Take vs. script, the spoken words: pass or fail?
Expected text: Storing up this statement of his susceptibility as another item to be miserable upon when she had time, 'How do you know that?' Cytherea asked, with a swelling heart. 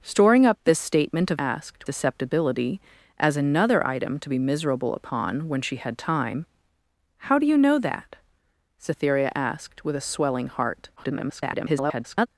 fail